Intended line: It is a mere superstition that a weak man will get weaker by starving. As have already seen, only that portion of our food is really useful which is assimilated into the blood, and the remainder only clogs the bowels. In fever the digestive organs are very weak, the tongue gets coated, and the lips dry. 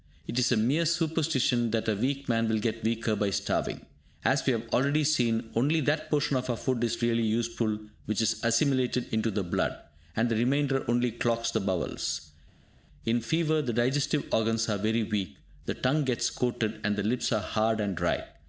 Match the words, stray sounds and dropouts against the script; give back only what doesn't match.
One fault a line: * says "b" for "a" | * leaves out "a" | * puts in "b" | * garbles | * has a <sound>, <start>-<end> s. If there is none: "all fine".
* puts in "we"
* puts in "are hard and"